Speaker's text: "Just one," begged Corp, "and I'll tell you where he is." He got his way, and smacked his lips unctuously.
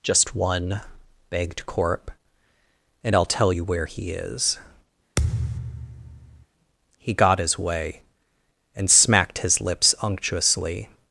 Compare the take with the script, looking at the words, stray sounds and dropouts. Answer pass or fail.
fail